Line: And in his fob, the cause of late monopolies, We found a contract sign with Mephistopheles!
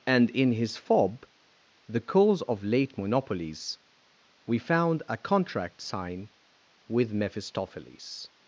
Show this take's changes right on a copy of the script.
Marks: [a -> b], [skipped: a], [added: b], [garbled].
And in his fob, the cause of late monopolies, We found a contract sign with Mephistopheles!